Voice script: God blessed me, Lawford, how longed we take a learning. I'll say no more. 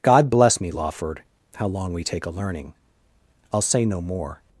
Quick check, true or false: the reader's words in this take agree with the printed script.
false